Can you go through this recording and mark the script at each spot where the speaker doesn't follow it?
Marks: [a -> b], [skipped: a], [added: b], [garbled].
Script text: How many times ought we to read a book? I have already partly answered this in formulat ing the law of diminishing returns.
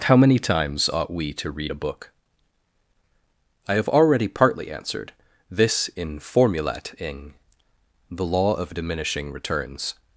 How many times ought we to read a book? I have already partly answered this in formulat ing the law of diminishing returns.